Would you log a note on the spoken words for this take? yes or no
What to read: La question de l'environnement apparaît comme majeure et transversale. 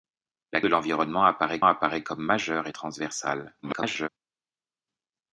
yes